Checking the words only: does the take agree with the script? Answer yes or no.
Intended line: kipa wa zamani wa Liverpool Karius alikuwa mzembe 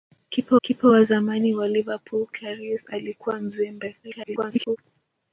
no